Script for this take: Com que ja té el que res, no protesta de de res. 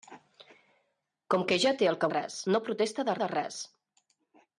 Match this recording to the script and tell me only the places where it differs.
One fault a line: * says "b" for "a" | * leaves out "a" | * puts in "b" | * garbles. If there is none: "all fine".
all fine